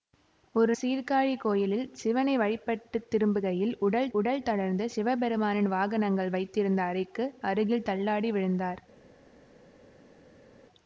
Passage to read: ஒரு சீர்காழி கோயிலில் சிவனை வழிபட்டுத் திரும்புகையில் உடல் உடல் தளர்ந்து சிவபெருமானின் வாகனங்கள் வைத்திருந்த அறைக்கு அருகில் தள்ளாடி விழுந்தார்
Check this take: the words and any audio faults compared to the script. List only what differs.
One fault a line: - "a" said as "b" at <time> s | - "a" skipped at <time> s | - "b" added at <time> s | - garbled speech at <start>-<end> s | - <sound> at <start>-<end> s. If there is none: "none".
none